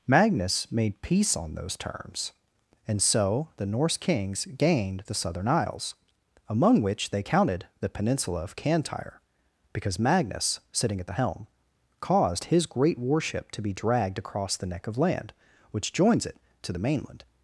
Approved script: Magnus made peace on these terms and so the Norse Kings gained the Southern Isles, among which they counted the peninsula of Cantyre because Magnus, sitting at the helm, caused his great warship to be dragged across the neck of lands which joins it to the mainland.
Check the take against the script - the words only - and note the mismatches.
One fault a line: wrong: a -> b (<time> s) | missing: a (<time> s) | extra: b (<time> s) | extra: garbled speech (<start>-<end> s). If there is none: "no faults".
wrong: these -> those (1.5 s)
wrong: lands -> land (15.0 s)